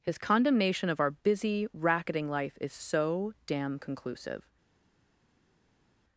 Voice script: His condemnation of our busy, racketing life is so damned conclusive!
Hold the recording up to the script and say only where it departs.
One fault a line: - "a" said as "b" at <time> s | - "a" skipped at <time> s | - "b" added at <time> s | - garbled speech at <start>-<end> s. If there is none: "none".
- "damned" said as "damn" at 3.5 s